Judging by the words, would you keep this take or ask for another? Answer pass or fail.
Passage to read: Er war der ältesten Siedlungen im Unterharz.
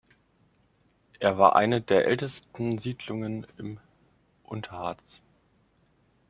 fail